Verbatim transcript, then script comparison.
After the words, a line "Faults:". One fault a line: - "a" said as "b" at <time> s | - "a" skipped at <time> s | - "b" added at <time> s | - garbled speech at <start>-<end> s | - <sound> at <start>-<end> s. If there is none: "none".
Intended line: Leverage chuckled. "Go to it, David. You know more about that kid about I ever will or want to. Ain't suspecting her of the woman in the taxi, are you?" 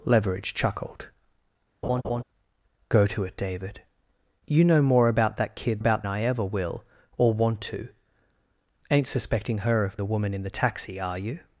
Leverage chuckled. "Go to it, David. You know more about that kid about I ever will or want to. Ain't suspecting her of the woman in the taxi, are you?"
Faults:
- laugh at 1.8-2.2 s